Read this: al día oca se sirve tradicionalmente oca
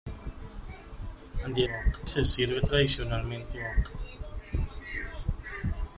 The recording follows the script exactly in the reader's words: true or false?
true